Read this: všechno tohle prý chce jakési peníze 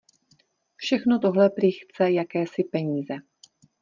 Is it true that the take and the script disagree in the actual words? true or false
false